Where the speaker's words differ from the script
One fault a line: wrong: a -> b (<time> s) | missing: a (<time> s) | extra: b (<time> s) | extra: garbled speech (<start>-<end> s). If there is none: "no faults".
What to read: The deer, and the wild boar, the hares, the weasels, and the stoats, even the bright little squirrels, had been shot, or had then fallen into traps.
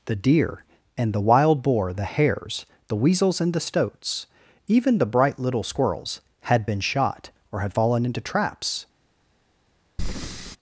missing: then (7.7 s)